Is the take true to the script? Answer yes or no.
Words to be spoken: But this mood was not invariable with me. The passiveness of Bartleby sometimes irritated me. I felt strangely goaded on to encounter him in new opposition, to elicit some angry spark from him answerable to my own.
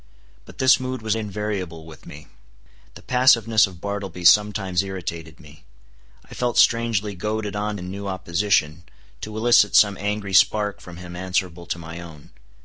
no